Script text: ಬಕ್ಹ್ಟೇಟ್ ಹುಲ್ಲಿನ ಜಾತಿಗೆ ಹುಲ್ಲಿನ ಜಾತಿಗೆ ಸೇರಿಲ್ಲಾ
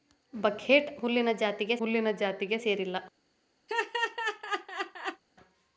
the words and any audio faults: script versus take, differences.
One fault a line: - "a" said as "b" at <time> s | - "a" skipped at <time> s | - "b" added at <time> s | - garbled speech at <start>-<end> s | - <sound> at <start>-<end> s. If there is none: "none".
- laugh at 3.7-5.2 s